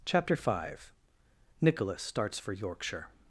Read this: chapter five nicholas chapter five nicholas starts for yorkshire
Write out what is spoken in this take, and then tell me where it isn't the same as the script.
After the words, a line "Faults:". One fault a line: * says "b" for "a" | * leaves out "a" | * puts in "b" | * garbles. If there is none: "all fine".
chapter five nicholas starts for yorkshire
Faults:
* leaves out "chapter five nicholas"